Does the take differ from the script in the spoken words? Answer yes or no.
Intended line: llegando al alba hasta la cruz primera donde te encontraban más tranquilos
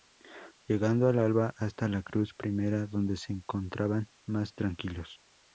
yes